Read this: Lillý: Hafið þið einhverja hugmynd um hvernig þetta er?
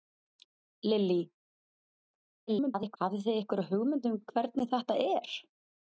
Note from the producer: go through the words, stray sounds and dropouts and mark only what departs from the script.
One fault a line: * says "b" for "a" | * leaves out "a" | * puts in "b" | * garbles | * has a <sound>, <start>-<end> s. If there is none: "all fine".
* garbles